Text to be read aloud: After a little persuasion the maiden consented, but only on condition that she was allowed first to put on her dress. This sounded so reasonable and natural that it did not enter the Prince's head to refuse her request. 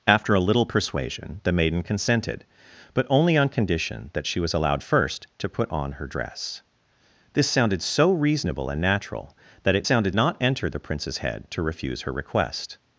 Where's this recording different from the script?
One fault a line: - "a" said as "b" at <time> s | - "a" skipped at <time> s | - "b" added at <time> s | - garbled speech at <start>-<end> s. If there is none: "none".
- "did" said as "sounded" at 9.8 s